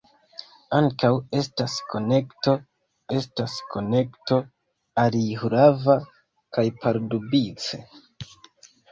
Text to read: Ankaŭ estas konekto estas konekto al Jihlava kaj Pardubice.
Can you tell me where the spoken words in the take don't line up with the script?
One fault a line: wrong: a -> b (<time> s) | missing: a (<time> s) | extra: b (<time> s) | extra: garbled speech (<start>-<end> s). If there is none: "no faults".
no faults